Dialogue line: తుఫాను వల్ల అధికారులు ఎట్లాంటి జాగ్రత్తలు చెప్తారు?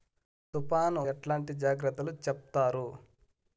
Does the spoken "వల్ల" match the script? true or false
false